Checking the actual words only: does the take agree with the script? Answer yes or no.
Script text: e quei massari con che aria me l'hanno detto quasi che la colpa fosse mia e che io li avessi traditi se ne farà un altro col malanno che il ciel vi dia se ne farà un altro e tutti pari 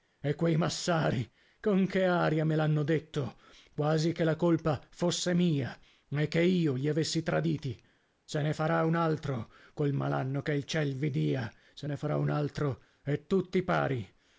yes